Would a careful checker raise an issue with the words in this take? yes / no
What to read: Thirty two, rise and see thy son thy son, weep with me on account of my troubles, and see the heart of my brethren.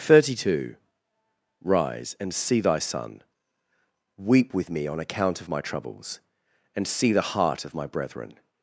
yes